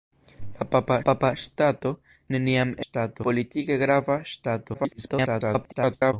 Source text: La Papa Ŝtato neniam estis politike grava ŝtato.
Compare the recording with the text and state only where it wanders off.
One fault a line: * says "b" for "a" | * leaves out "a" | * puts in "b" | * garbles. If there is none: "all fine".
* puts in "Papa"
* says "ŝtato" for "estis"
* garbles